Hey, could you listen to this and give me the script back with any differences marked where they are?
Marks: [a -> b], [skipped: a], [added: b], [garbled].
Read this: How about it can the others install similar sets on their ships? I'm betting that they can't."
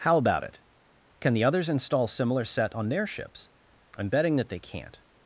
How about it can the others install similar [sets -> set] on their ships? I'm betting that they can't."